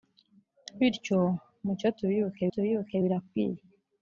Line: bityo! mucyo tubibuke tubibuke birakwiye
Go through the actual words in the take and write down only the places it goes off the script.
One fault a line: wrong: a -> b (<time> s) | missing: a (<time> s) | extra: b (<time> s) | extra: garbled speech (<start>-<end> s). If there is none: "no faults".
no faults